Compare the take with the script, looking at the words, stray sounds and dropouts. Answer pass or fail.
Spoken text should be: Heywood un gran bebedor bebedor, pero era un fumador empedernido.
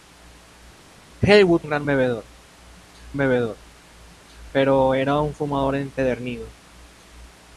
pass